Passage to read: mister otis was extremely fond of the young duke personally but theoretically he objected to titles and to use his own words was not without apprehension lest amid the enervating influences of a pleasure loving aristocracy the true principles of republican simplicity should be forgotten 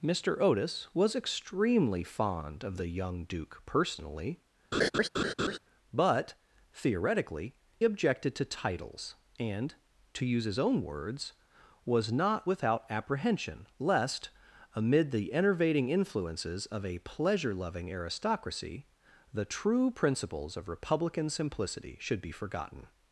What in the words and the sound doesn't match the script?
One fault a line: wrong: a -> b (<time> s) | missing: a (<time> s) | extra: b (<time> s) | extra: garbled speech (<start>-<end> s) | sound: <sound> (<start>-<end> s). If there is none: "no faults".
sound: laugh (4.7-5.6 s)
missing: he (7.6 s)